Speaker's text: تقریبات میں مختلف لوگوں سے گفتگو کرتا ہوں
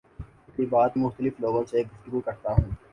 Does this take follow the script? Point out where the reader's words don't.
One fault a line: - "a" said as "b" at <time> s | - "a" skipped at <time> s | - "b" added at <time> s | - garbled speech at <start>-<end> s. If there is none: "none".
- "میں" skipped at 1.0 s